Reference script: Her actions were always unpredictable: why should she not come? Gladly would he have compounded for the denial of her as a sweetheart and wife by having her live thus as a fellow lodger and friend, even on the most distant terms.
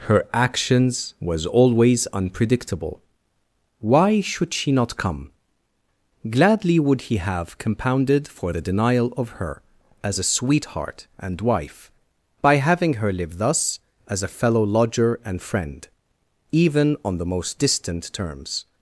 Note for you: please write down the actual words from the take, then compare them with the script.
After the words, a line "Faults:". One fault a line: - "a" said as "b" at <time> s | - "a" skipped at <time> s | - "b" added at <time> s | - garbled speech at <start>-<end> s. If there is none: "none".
Her actions was always unpredictable: why should she not come? Gladly would he have compounded for the denial of her as a sweetheart and wife by having her live thus as a fellow lodger and friend, even on the most distant terms.
Faults:
- "were" said as "was" at 1.2 s